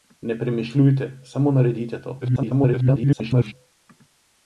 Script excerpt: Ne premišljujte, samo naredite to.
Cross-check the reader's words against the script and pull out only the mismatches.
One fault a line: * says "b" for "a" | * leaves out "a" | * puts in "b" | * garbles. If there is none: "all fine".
* garbles